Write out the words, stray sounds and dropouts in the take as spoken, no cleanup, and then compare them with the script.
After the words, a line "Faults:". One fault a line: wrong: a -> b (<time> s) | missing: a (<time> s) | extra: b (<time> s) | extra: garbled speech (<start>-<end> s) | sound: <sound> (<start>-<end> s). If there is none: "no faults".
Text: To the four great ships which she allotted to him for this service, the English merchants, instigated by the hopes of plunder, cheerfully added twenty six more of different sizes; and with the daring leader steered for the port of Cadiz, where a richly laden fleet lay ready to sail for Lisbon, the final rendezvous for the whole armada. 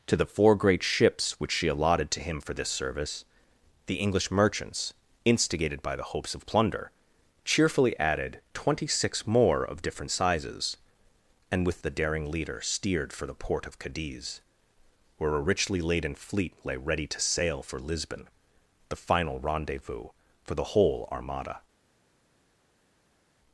To the four great ships which she allotted to him for this service, the English merchants, instigated by the hopes of plunder, cheerfully added twenty six more of different sizes; and with the daring leader steered for the port of Cadiz, where a richly laden fleet lay ready to sail for Lisbon, the final rendezvous for the whole armada.
Faults:
no faults